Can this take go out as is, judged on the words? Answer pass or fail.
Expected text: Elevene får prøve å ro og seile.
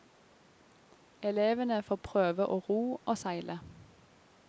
pass